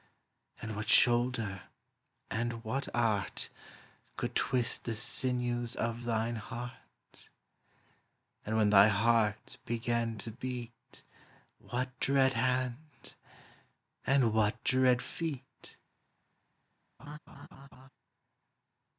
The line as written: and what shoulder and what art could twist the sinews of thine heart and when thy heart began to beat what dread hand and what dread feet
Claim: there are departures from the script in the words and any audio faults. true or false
true